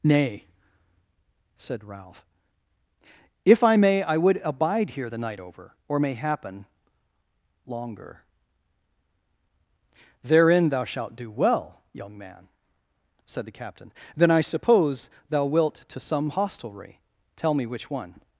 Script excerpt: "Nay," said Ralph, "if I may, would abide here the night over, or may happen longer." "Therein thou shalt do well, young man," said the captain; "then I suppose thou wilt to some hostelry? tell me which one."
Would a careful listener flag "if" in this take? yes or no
no